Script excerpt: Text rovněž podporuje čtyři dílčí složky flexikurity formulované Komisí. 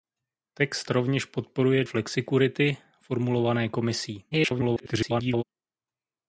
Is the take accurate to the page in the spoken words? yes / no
no